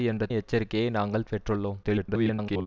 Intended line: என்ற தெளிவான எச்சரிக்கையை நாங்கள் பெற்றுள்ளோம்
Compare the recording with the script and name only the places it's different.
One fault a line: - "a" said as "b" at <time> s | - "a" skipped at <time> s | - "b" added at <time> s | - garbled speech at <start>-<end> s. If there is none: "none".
- "தெளிவான" skipped at 0.2 s
- garbled speech at 1.8-2.7 s